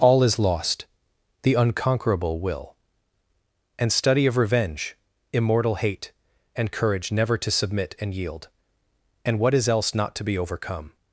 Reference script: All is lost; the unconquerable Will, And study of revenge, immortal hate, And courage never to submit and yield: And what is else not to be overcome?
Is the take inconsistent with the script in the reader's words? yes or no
no